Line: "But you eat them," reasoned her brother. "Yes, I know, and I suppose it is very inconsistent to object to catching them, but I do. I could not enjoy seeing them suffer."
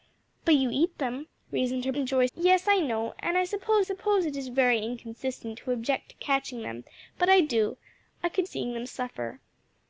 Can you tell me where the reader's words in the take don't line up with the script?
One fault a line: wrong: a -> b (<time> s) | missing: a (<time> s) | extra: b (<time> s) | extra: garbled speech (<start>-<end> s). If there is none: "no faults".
wrong: brother -> enjoy (2.0 s)
extra: suppose (3.8 s)
missing: not enjoy (8.5 s)